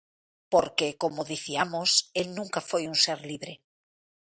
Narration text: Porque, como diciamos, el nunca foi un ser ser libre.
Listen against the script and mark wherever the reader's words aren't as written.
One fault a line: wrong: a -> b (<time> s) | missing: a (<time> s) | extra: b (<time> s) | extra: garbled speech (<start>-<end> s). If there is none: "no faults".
missing: ser (3.2 s)